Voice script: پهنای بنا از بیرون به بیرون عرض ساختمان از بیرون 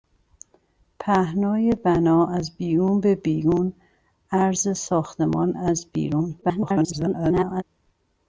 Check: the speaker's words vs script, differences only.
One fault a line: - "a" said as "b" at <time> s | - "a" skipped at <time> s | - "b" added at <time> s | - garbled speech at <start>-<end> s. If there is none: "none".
- garbled speech at 6.4-7.6 s